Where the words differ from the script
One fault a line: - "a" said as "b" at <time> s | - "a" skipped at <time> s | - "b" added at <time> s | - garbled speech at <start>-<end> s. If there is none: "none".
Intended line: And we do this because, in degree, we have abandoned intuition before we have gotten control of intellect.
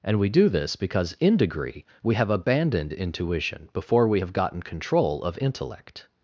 none